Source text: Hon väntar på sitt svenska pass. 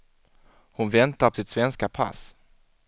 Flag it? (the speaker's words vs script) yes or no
yes